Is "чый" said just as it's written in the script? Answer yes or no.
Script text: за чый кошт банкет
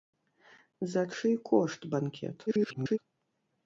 yes